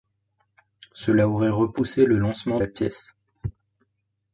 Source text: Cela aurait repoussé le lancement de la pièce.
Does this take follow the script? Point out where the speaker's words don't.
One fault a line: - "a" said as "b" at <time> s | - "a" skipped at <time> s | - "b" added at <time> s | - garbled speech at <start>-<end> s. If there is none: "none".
- "de" skipped at 2.6 s